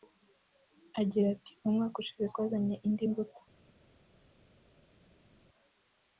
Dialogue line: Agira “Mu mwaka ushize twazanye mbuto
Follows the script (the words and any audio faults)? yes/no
no